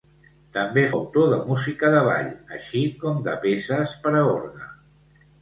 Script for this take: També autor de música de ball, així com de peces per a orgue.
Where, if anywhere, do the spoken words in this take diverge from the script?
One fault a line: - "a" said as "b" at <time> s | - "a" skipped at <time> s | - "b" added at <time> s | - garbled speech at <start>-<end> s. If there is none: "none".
none